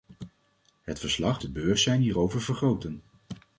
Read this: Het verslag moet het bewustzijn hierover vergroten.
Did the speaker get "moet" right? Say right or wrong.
wrong